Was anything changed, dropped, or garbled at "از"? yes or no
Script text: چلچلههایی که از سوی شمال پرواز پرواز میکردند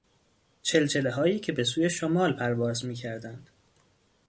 yes